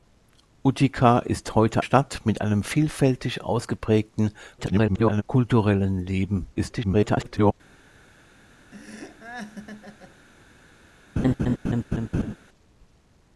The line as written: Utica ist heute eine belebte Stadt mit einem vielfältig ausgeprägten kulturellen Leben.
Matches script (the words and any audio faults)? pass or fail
fail